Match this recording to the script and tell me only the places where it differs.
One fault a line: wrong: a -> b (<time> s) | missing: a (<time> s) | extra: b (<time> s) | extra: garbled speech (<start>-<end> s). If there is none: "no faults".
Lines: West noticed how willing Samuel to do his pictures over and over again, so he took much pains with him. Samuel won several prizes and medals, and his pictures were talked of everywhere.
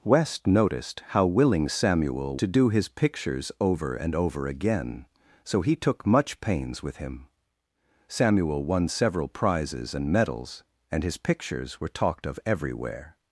no faults